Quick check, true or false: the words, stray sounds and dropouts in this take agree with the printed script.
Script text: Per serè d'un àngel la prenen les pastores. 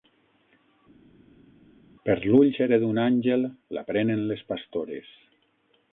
false